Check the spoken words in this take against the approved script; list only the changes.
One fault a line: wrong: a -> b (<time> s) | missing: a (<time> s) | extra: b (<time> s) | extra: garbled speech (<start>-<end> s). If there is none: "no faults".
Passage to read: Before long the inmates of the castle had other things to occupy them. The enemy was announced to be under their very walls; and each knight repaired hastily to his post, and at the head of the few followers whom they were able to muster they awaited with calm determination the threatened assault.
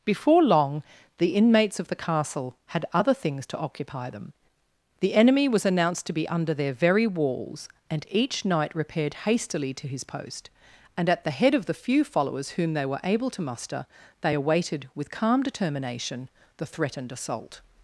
no faults